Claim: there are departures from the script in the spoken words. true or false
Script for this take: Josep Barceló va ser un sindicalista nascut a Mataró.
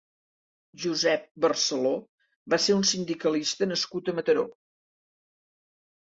false